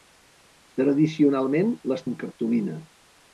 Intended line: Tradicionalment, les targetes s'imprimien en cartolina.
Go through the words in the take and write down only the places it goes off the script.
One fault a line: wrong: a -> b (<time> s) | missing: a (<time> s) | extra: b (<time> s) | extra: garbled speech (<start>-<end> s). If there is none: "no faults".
missing: targetes s'imprimien (2.0 s)